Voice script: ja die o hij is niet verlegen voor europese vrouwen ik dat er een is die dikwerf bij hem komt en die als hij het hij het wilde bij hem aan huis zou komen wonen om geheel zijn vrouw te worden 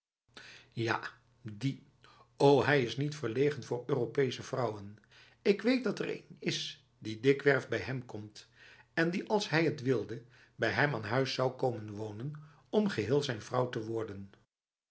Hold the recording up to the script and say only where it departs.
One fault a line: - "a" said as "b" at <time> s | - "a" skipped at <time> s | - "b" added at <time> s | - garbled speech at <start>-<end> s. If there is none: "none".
- "weet" added at 5.6 s
- "hij het" skipped at 9.8 s